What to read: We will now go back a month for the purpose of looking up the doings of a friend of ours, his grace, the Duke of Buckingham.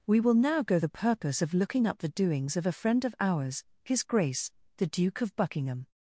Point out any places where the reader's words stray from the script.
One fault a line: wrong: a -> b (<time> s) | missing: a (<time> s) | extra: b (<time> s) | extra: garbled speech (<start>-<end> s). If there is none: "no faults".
missing: back a month for (0.8 s)